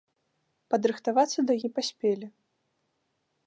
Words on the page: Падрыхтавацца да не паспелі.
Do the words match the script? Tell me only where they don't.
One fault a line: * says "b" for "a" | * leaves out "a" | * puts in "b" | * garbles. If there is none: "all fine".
all fine